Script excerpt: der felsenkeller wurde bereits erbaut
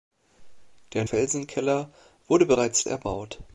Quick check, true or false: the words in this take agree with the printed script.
true